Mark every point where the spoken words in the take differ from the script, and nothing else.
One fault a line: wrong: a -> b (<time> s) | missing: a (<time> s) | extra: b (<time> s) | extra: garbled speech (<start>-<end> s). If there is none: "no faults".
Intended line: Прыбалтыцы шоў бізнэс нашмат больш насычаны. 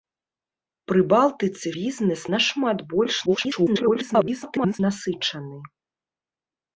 missing: шоў (1.7 s)
extra: garbled speech (3.3-4.8 s)